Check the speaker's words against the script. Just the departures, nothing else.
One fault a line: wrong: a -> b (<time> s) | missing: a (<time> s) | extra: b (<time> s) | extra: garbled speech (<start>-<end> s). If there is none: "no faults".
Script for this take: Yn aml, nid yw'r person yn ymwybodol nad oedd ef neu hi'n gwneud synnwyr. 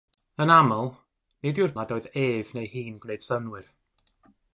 missing: person yn ymwybodol (1.8 s)